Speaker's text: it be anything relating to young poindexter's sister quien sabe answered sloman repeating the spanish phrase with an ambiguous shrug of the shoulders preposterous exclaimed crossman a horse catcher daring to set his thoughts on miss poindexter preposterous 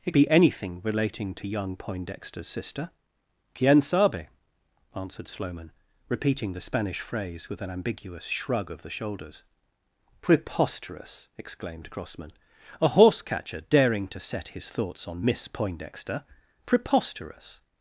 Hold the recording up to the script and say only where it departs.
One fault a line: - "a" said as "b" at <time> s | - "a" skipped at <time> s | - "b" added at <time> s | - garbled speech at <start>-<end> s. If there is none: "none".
none